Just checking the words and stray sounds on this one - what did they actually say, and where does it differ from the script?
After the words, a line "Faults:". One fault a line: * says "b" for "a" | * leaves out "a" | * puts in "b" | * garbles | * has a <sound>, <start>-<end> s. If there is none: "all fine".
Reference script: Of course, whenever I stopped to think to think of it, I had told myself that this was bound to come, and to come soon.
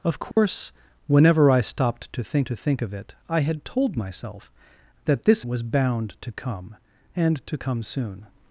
Of course, whenever I stopped to think to think of it, I had told myself that this was bound to come, and to come soon.
Faults:
* has a dropout, 0.3-0.4 s